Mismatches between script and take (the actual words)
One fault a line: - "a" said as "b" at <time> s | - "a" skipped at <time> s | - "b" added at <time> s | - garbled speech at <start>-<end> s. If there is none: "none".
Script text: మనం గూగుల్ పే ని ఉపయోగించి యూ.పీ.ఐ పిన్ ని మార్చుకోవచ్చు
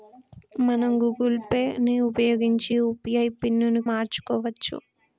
none